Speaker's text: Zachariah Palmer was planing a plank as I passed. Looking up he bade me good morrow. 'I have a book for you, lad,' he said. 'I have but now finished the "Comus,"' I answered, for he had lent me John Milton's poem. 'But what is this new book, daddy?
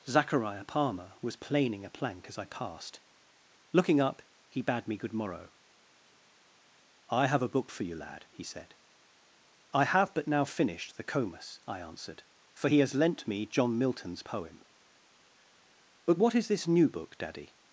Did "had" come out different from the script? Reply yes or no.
yes